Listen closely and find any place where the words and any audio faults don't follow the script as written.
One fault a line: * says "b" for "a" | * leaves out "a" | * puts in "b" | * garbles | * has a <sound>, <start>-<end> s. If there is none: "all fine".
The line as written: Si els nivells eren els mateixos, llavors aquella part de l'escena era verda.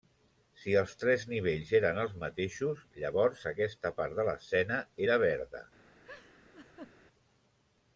* puts in "tres"
* says "aquesta" for "aquella"
* has a laugh, 6.0-6.9 s